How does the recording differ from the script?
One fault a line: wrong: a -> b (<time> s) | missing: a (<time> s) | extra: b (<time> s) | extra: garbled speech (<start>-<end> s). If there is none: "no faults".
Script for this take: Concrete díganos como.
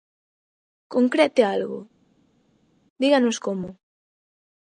extra: algo (1.5 s)